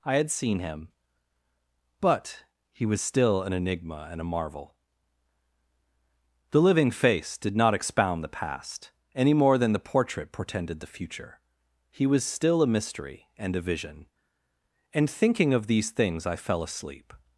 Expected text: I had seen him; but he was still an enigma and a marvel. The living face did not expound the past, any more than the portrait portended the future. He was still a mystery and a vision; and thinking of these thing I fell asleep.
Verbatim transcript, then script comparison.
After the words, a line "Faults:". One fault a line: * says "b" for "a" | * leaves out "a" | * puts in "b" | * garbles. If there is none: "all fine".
I had seen him; but he was still an enigma and a marvel. The living face did not expound the past, any more than the portrait portended the future. He was still a mystery and a vision; and thinking of these things I fell asleep.
Faults:
* says "things" for "thing"